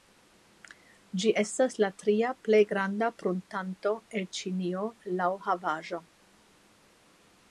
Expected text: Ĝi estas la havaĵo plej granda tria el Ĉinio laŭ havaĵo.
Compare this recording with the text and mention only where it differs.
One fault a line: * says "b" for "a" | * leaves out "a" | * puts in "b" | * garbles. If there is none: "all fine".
* says "tria" for "havaĵo"
* says "pruntanto" for "tria"